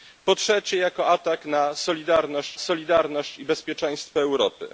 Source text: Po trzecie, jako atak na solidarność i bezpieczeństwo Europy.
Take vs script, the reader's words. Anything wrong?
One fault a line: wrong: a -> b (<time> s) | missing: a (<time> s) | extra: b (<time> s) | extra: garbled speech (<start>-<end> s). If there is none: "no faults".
extra: solidarność (2.6 s)